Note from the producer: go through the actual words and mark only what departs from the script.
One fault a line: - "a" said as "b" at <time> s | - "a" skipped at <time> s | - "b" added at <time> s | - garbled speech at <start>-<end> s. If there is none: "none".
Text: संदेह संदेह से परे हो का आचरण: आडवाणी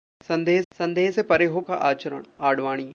none